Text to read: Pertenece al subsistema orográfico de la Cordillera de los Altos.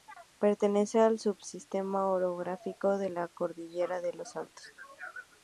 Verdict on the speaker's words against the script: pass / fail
pass